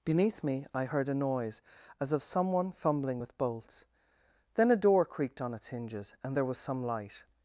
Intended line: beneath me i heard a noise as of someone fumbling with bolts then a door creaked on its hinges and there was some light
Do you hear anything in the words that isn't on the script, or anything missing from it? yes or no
no